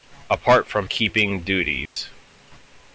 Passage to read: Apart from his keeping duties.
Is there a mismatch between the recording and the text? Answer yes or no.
yes